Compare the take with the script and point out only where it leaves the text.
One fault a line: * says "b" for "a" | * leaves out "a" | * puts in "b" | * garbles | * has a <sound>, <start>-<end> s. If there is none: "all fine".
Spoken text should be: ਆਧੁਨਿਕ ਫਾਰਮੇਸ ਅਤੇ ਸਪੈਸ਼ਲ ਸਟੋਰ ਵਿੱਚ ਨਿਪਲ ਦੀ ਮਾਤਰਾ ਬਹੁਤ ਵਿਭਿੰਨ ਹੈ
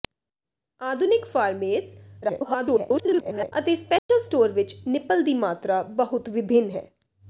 * garbles
* has a dropout, 4.0-4.1 s